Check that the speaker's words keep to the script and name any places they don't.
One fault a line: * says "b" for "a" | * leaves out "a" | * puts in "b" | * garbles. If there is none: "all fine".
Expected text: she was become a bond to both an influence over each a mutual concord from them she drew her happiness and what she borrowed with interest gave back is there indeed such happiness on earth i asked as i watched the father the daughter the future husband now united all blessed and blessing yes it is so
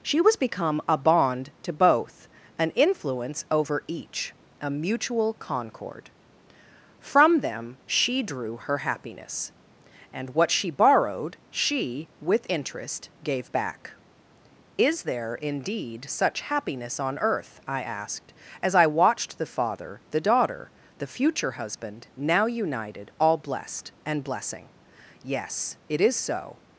* puts in "she"